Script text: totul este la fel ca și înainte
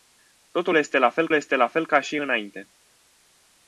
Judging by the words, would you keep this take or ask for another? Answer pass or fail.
fail